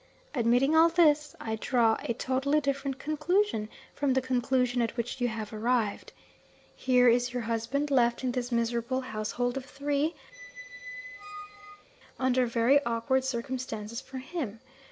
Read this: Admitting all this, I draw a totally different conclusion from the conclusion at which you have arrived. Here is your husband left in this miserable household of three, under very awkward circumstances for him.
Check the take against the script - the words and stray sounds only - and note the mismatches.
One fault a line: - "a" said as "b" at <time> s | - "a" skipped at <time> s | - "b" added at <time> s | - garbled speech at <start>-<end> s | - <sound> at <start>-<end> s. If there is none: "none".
- squeak at 10.3-11.9 s